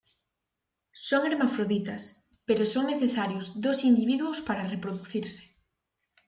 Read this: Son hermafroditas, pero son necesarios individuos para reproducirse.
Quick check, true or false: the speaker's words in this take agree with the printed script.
false